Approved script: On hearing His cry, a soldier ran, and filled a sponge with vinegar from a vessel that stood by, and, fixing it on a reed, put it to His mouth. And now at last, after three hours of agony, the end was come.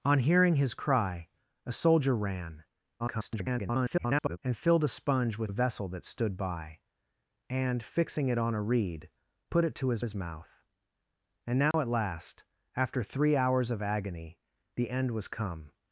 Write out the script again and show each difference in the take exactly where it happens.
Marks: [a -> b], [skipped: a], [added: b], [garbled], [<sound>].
On hearing His cry, a soldier ran, [garbled] and filled a sponge with [skipped: vinegar from] a vessel that stood by, and, fixing it on a reed, put it to His [added: His] mouth. And now [dropout] at last, after three hours of agony, the end was come.